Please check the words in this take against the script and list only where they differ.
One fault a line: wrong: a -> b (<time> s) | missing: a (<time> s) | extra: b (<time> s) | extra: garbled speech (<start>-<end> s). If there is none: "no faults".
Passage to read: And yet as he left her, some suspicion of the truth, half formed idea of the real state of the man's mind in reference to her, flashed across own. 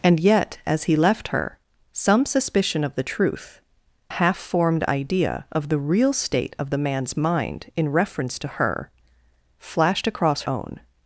no faults